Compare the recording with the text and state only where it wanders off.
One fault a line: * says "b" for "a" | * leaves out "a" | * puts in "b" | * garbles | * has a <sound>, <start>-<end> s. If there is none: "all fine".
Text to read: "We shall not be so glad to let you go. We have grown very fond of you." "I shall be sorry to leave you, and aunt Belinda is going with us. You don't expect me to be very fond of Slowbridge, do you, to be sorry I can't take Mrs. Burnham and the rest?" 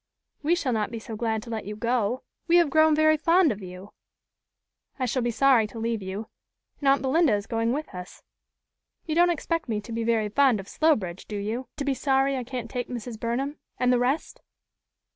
all fine